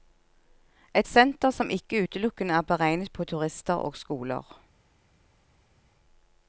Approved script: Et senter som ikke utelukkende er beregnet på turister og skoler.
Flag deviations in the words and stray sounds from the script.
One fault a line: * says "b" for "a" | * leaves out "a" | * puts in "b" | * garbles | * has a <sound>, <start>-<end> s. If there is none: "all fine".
all fine